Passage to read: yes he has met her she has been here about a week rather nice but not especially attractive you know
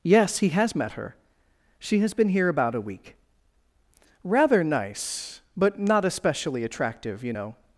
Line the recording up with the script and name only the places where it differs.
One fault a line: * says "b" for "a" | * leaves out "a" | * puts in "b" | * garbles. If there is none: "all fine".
all fine